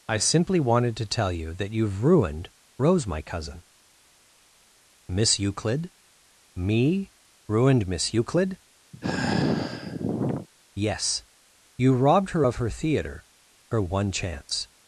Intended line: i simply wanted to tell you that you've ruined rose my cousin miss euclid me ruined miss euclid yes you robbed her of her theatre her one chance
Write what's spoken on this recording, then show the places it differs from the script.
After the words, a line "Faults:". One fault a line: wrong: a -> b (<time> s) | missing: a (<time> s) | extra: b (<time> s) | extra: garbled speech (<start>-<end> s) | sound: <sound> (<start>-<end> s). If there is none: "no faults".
i simply wanted to tell you that you've ruined rose my cousin miss euclid me ruined miss euclid yes you robbed her of her theatre her one chance
Faults:
sound: sigh (8.9-10.5 s)